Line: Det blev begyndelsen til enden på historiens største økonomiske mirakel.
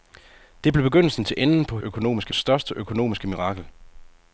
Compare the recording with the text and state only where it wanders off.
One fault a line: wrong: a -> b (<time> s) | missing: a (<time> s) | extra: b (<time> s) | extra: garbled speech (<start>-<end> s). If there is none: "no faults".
wrong: historiens -> økonomiske (1.8 s)